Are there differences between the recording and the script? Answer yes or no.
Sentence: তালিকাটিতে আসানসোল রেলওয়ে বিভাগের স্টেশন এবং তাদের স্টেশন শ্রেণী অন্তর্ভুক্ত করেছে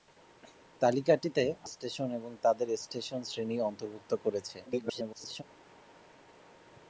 yes